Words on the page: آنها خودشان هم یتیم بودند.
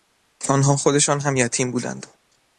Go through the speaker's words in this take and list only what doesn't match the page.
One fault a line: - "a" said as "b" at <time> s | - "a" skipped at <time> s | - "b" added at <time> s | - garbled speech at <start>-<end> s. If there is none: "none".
none